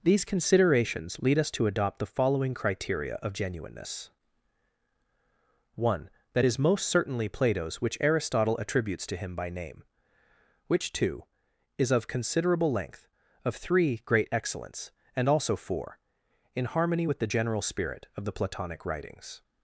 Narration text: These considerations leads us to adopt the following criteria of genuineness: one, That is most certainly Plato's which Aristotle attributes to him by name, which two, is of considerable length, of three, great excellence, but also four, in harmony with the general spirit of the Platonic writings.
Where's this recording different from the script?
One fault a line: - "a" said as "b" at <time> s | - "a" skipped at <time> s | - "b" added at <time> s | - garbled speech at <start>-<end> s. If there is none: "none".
- "leads" said as "lead" at 1.2 s
- "but" said as "and" at 15.1 s